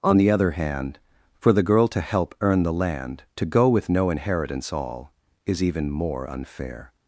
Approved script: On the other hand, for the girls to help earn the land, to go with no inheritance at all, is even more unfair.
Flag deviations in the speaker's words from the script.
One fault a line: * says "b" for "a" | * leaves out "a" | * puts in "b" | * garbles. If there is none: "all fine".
* says "girl" for "girls"
* leaves out "at"